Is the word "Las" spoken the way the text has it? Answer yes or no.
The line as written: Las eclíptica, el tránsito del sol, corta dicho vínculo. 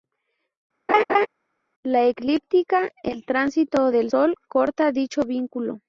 no